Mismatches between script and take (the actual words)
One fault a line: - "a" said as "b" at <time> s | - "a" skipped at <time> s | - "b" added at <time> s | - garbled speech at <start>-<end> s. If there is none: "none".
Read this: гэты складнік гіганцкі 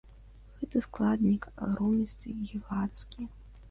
- "агромністы" added at 1.7 s